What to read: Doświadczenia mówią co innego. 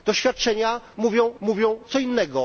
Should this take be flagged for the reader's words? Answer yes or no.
yes